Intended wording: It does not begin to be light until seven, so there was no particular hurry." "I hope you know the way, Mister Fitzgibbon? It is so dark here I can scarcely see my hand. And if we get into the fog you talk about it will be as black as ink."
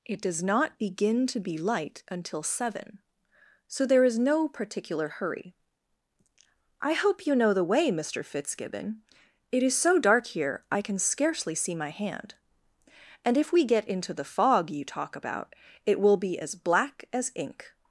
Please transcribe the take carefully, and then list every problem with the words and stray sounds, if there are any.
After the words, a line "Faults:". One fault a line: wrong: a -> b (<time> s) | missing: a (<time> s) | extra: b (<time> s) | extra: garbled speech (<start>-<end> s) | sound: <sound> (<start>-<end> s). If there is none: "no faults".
It does not begin to be light until seven, so there is no particular hurry." "I hope you know the way, Mister Fitzgibbon? It is so dark here I can scarcely see my hand. And if we get into the fog you talk about it will be as black as ink."
Faults:
wrong: was -> is (4.0 s)